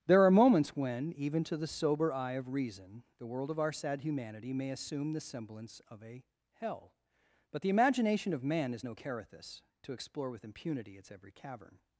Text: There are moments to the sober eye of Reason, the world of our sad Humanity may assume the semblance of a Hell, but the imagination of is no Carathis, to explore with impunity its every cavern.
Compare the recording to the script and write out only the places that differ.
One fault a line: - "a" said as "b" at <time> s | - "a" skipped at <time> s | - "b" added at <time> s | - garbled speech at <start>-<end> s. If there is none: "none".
- "when even" added at 0.8 s
- "man" added at 8.4 s